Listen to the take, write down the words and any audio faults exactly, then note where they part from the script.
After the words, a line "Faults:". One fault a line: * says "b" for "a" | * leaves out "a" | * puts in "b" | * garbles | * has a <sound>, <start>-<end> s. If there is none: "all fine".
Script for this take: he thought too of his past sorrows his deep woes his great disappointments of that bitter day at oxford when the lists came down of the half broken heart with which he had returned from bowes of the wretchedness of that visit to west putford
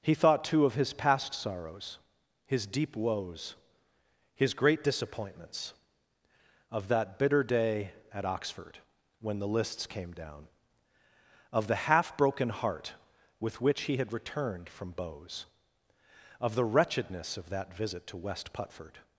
he thought too of his past sorrows his deep woes his great disappointments of that bitter day at oxford when the lists came down of the half broken heart with which he had returned from bowes of the wretchedness of that visit to west putford
Faults:
all fine